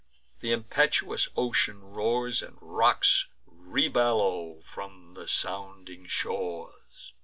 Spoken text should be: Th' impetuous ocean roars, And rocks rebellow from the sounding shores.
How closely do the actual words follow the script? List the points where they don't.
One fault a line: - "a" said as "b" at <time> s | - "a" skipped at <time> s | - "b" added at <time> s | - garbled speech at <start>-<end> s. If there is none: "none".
none